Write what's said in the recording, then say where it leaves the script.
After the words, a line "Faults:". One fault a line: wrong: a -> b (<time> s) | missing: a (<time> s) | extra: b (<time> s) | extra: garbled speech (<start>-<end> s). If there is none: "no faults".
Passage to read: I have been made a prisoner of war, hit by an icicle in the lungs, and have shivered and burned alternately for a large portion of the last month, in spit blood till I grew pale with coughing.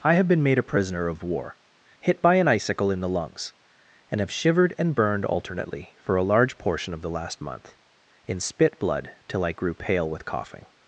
I have been made a prisoner of war, hit by an icicle in the lungs, and have shivered and burned alternately for a large portion of the last month, in spit blood till I grew pale with coughing.
Faults:
no faults